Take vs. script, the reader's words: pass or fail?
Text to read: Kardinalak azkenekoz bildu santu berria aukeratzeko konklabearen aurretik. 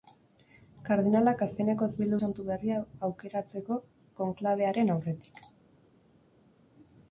pass